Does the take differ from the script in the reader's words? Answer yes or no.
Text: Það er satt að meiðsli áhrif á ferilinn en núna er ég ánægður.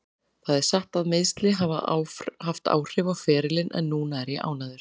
yes